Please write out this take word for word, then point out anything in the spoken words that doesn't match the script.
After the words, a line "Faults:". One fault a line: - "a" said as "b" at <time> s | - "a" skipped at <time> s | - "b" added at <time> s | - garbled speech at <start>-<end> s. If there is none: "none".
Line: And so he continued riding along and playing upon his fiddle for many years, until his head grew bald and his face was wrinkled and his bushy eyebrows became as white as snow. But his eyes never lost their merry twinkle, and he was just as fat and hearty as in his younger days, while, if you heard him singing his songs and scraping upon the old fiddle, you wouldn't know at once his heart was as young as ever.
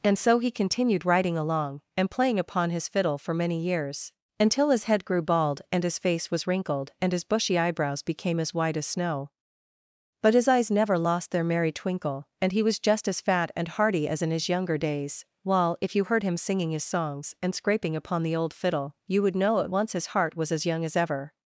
And so he continued riding along and playing upon his fiddle for many years, until his head grew bald and his face was wrinkled and his bushy eyebrows became as white as snow. But his eyes never lost their merry twinkle, and he was just as fat and hearty as in his younger days, while, if you heard him singing his songs and scraping upon the old fiddle, you would know at once his heart was as young as ever.
Faults:
- "wouldn't" said as "would" at 19.2 s